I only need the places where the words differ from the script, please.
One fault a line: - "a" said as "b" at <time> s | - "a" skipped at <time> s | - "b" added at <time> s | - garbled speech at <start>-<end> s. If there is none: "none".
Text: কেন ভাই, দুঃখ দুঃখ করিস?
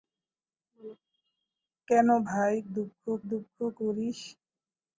none